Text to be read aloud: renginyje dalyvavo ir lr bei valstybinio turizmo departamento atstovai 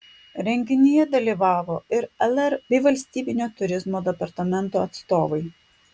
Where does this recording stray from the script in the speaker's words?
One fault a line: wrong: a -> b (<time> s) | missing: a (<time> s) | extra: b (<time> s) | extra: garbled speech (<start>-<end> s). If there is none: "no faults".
no faults